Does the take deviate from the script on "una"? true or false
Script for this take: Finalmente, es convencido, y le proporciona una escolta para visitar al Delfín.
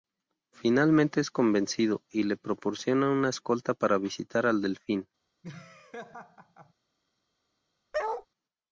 false